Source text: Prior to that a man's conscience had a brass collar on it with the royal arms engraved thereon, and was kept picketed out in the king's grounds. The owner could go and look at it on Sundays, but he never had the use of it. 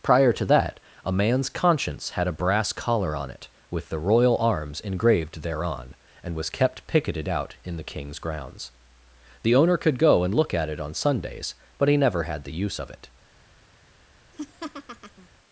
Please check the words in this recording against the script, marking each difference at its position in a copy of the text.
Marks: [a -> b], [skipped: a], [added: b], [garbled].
Prior to that a man's conscience had a brass collar on it with the royal arms engraved thereon, and was kept picketed out in the king's grounds. The owner could go and look at it on Sundays, but he never had the use of it.